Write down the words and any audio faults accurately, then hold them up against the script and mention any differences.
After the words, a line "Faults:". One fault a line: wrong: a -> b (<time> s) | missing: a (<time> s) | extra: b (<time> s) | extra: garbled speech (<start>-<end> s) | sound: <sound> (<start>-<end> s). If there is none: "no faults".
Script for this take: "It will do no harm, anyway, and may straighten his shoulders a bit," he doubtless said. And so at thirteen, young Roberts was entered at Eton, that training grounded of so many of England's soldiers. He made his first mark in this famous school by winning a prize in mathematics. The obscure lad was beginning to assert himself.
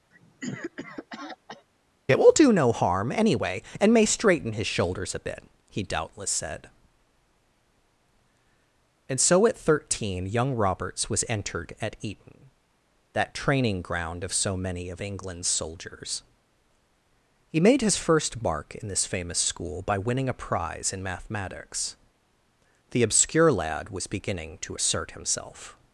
"It will do no harm, anyway, and may straighten his shoulders a bit," he doubtless said. And so at thirteen, young Roberts was entered at Eton, that training ground of so many of England's soldiers. He made his first mark in this famous school by winning a prize in mathematics. The obscure lad was beginning to assert himself.
Faults:
sound: cough (0.1-1.7 s)
wrong: grounded -> ground (13.8 s)